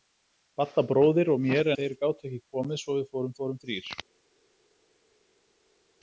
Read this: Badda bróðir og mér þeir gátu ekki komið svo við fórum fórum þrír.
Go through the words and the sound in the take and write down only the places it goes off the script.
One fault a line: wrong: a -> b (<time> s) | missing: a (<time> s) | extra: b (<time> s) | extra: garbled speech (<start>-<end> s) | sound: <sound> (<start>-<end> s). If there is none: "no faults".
no faults